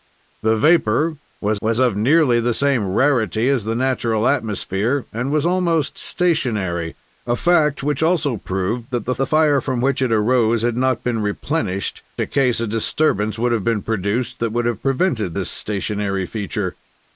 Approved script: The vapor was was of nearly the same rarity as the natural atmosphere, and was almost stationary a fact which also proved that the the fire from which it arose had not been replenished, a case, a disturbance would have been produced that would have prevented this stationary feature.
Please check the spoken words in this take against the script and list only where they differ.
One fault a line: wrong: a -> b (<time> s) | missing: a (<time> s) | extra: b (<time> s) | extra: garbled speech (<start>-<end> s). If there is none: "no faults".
no faults